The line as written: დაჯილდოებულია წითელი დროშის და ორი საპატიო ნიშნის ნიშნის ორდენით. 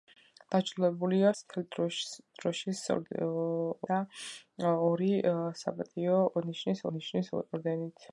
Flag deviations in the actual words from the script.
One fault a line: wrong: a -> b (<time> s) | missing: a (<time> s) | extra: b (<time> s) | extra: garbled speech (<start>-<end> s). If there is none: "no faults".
no faults